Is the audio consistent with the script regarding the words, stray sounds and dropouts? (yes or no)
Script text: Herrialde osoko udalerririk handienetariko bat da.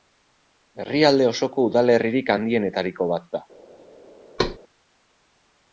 no